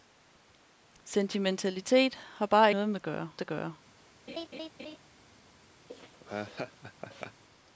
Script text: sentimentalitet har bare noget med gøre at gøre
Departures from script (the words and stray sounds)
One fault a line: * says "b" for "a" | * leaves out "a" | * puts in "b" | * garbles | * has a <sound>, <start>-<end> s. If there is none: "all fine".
* has a laugh, 4.3-5.0 s
* has a laugh, 5.9-7.4 s